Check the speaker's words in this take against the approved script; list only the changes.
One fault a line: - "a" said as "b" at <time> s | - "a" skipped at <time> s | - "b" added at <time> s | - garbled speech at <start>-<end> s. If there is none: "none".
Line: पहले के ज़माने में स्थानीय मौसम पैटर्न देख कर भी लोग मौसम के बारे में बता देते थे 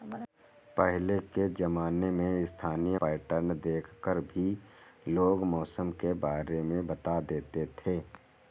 - "मौसम" skipped at 3.0 s